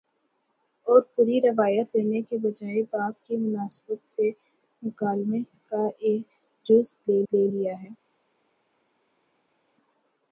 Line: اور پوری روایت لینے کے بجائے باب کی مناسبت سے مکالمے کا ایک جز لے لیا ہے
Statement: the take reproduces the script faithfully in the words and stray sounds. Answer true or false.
false